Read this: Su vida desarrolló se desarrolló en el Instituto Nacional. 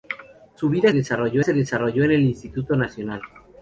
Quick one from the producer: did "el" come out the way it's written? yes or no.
yes